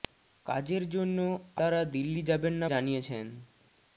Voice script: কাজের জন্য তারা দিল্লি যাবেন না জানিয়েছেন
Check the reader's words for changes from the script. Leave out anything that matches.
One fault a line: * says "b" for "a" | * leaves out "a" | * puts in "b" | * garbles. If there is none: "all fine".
all fine